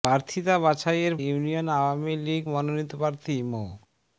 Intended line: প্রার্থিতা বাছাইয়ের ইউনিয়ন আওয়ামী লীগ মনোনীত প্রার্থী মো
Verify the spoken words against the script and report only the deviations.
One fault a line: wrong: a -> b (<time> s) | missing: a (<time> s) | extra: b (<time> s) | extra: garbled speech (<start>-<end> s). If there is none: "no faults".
no faults